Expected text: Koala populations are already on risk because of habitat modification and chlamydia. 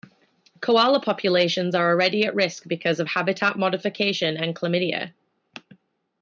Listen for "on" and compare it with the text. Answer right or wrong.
wrong